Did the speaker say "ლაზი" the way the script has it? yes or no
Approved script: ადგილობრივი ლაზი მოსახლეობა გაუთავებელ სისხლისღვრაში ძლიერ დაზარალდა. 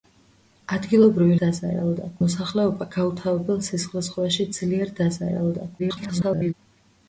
no